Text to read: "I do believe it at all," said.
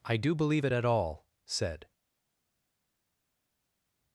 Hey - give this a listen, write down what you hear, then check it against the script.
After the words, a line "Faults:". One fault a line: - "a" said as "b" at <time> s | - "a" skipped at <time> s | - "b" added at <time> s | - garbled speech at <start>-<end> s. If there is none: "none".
"I do believe it at all," said.
Faults:
none